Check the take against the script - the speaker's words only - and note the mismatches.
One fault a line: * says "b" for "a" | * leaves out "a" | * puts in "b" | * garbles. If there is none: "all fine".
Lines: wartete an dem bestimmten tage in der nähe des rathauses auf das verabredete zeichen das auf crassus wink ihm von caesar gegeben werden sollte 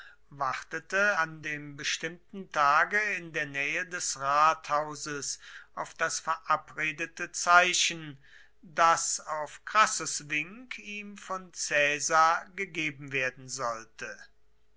all fine